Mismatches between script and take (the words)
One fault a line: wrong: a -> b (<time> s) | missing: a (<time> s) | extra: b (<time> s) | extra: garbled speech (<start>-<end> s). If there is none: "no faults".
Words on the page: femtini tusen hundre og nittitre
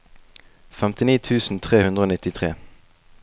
extra: tre (1.7 s)